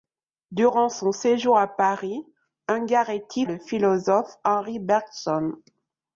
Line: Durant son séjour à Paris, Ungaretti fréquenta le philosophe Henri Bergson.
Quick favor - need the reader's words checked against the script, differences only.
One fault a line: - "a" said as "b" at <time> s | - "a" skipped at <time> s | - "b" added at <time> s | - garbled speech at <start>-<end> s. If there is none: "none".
- "fréquenta" skipped at 3.5 s